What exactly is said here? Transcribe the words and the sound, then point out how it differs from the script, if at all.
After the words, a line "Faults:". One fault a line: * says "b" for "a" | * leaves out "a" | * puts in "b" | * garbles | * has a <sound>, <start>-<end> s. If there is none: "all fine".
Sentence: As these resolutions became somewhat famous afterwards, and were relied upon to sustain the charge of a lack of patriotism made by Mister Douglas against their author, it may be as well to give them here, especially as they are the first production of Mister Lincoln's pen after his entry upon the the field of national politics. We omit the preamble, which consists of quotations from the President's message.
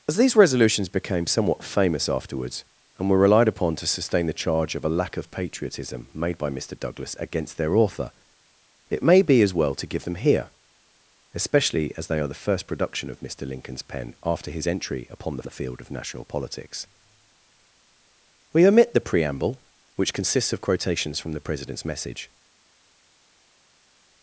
As these resolutions became somewhat famous afterwards, and were relied upon to sustain the charge of a lack of patriotism made by Mister Douglas against their author, it may be as well to give them here, especially as they are the first production of Mister Lincoln's pen after his entry upon the the field of national politics. We omit the preamble, which consists of quotations from the President's message.
Faults:
all fine